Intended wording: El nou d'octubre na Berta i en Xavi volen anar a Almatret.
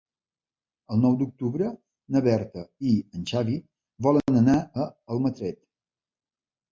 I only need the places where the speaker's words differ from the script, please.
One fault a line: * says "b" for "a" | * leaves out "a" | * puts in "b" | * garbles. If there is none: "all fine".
all fine